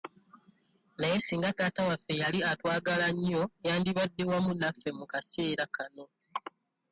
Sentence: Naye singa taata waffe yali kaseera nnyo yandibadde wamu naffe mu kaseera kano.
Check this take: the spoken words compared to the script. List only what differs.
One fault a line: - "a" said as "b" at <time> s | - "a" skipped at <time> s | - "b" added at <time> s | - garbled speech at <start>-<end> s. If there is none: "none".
- "kaseera" said as "atwagala" at 2.5 s